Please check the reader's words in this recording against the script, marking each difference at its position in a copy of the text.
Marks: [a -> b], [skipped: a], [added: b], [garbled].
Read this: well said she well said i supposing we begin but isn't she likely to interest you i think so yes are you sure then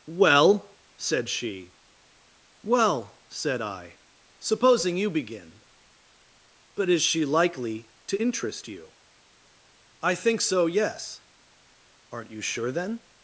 well said she well said i supposing [we -> you] begin but [isn't -> is] she likely to interest you i think so yes [are -> aren't] you sure then